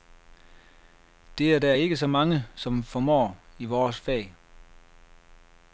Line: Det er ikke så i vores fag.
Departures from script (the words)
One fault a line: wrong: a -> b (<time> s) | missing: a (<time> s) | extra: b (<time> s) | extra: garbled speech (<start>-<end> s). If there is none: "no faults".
extra: der (1.6 s)
extra: mange som formår (2.1 s)